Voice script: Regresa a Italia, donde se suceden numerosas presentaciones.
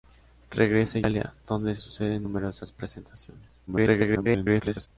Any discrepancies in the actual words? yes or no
yes